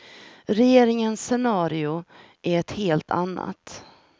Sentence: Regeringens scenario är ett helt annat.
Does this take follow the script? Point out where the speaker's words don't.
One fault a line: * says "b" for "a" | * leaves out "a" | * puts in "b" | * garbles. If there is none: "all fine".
all fine